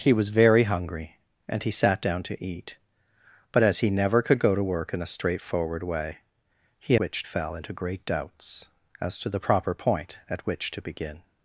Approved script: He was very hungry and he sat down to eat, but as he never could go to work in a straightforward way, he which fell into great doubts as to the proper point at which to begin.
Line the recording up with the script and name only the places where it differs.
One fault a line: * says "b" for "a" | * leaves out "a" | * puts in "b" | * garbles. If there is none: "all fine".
all fine